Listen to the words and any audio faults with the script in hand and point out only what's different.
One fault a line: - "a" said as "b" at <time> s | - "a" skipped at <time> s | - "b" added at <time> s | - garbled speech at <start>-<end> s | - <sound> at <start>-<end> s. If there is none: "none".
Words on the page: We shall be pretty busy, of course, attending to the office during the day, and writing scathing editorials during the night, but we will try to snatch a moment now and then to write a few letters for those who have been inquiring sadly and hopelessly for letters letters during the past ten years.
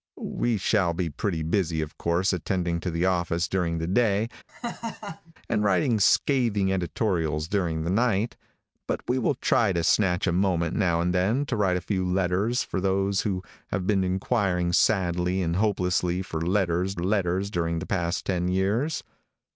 - laugh at 4.5-5.3 s